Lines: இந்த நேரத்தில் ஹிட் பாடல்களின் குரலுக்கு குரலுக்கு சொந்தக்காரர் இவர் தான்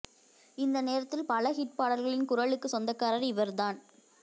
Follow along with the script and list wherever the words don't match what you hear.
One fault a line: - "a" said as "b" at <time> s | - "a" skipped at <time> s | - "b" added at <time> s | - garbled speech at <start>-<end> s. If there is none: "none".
- "பல" added at 1.3 s
- "குரலுக்கு" skipped at 2.7 s